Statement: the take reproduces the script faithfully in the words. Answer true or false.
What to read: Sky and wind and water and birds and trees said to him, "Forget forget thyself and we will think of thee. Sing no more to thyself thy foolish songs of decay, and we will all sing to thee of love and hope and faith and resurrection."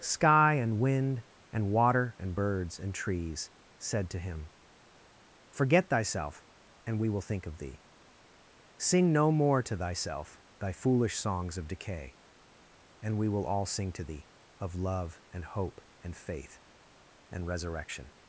false